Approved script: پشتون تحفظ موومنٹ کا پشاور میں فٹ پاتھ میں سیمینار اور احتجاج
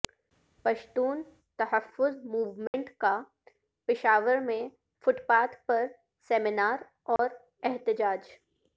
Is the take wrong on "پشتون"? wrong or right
right